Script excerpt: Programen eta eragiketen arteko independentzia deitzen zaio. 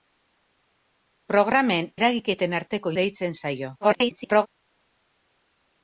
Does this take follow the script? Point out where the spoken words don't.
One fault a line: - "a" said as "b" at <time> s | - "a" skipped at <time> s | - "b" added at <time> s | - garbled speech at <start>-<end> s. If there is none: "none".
- "eta" skipped at 1.9 s
- "independentzia" skipped at 3.0 s
- garbled speech at 3.8-4.5 s